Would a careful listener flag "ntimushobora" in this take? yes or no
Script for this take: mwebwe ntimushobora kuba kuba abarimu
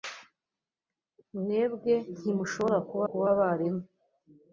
no